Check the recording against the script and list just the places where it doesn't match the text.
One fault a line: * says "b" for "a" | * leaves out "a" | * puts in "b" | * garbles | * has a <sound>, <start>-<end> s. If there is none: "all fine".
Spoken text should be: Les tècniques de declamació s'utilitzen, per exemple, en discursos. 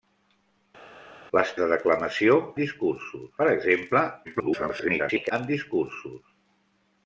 * leaves out "tècniques"
* says "discursos" for "s'utilitzen"
* garbles